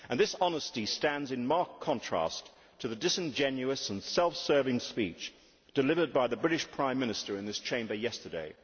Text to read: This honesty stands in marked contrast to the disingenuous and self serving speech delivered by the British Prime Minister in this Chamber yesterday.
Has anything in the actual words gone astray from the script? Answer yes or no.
no